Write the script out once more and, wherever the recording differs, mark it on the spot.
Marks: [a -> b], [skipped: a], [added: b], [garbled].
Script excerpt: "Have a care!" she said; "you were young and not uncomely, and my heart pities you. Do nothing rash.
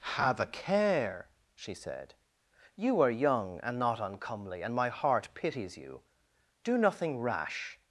"Have a care!" she said; "you [were -> are] young and not uncomely, and my heart pities you. Do nothing rash.